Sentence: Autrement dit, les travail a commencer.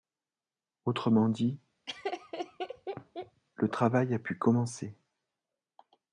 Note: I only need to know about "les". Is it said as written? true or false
false